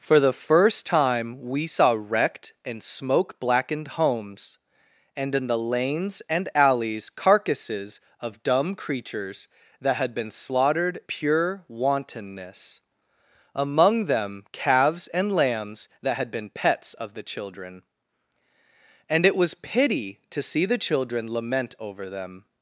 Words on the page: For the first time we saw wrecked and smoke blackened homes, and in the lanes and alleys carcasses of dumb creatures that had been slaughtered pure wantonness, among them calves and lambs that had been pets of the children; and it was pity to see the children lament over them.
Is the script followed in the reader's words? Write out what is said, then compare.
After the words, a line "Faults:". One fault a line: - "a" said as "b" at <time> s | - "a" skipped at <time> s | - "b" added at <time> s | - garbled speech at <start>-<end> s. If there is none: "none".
For the first time we saw wrecked and smoke blackened homes, and in the lanes and alleys carcasses of dumb creatures that had been slaughtered pure wantonness, among them calves and lambs that had been pets of the children; and it was pity to see the children lament over them.
Faults:
none